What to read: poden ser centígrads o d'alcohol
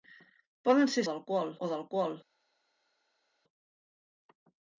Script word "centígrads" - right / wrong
wrong